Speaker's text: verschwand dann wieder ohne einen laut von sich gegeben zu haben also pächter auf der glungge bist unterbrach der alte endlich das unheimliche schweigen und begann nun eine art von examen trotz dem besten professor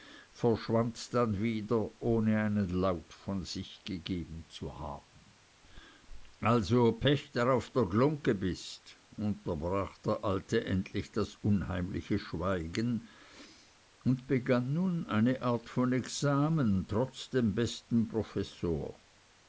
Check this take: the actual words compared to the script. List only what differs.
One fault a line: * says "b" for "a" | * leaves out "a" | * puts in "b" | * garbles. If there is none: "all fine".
all fine